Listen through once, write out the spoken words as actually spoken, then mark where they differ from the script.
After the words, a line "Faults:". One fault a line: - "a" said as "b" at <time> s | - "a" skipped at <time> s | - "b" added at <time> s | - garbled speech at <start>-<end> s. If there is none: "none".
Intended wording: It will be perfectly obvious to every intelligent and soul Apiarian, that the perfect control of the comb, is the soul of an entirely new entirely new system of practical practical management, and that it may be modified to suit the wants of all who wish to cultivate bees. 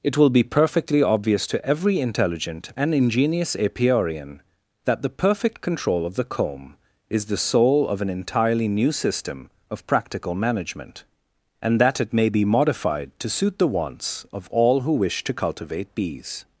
It will be perfectly obvious to every intelligent and ingenious Apiarian, that the perfect control of the comb, is the soul of an entirely new system of practical management, and that it may be modified to suit the wants of all who wish to cultivate bees.
Faults:
- "soul" said as "ingenious" at 3.0 s
- "entirely new" skipped at 8.9 s
- "practical" skipped at 10.3 s